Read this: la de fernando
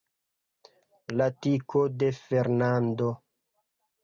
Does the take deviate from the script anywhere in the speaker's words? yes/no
yes